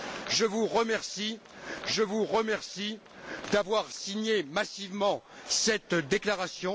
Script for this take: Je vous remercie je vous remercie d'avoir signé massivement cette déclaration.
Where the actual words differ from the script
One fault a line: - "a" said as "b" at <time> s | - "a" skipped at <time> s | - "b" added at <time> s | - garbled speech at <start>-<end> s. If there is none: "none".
none